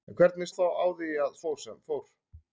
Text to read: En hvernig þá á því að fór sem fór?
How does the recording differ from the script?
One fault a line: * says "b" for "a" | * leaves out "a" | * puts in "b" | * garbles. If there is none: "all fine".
all fine